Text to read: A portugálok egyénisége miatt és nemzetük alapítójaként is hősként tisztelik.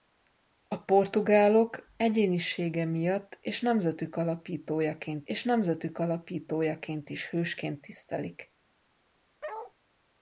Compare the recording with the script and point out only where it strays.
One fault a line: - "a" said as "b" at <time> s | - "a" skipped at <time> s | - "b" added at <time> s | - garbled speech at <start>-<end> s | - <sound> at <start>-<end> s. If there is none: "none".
- "és nemzetük alapítójaként" added at 5.2 s
- bark at 9.4-9.7 s